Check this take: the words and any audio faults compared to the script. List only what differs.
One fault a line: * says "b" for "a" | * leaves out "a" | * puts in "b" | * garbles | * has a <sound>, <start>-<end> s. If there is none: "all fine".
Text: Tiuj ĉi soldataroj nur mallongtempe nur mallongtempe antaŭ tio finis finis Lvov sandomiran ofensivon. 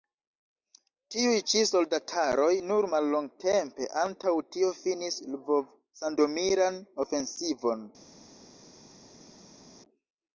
* leaves out "nur mallongtempe"
* leaves out "finis"